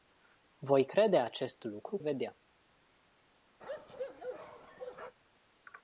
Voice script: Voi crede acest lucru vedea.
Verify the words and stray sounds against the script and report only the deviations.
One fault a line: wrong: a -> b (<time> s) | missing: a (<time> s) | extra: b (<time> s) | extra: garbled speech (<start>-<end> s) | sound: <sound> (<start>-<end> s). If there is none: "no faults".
sound: bark (3.6-5.2 s)